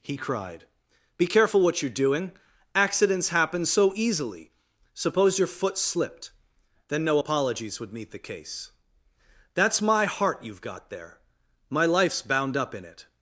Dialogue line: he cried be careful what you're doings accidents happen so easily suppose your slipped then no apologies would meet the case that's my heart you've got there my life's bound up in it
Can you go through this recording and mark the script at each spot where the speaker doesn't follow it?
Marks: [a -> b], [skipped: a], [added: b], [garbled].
he cried be careful what you're [doings -> doing] accidents happen so easily suppose your [added: foot] slipped then no apologies would meet the case that's my heart you've got there my life's bound up in it